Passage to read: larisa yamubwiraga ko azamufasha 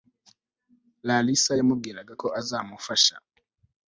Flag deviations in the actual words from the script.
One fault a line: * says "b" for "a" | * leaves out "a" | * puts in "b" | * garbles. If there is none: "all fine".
all fine